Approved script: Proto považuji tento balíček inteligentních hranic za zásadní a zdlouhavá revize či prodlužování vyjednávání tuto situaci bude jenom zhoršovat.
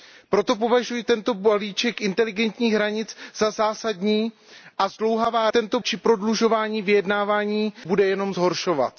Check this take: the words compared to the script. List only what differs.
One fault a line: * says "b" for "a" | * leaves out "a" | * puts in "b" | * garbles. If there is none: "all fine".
* says "tento" for "revize"
* leaves out "tuto situaci"